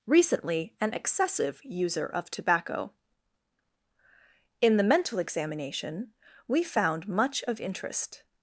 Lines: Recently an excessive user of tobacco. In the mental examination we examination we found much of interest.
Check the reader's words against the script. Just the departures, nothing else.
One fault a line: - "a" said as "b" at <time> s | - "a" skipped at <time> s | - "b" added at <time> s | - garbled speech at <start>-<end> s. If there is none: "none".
- "examination we" skipped at 6.6 s